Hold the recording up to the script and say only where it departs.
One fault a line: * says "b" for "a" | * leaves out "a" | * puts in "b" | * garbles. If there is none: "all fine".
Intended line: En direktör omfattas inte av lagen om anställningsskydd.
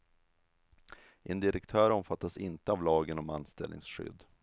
all fine